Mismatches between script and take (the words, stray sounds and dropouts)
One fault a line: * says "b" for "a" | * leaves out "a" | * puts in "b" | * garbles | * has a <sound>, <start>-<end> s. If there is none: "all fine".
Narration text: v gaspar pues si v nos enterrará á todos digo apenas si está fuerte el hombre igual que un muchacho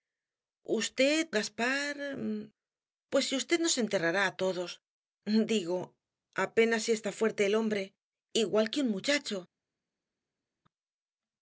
all fine